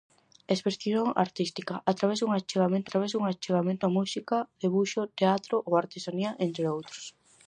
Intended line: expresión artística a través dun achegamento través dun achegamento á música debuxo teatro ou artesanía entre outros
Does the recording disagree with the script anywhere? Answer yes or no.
no